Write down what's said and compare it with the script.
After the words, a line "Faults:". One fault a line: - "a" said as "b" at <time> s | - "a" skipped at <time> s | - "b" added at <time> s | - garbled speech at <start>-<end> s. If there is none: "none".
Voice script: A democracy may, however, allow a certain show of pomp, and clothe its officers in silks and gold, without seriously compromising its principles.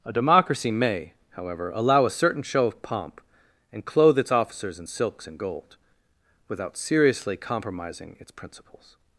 A democracy may, however, allow a certain show of pomp, and clothe its officers in silks and gold, without seriously compromising its principles.
Faults:
none